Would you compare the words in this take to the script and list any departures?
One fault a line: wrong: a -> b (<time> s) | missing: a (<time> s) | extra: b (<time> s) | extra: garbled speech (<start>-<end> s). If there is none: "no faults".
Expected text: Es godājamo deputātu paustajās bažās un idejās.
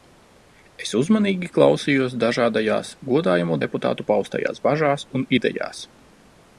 extra: uzmanīgi klausījos dažādajās (1.0 s)